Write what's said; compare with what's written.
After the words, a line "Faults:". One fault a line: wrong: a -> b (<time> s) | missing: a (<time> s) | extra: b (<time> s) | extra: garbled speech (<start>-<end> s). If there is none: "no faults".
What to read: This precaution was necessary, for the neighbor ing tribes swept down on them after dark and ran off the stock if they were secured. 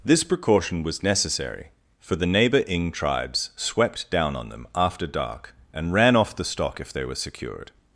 This precaution was necessary, for the neighbor ing tribes swept down on them after dark and ran off the stock if they were secured.
Faults:
no faults